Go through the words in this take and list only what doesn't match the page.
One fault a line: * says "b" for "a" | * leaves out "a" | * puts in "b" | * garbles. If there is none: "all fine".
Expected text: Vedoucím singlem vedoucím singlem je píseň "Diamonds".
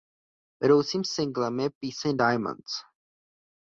* leaves out "vedoucím singlem"